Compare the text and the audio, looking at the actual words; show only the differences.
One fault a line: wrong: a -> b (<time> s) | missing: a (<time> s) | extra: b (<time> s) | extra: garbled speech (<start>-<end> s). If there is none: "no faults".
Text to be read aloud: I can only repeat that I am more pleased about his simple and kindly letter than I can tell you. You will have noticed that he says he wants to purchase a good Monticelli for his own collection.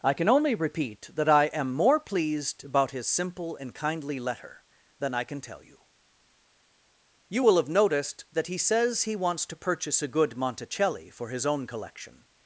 no faults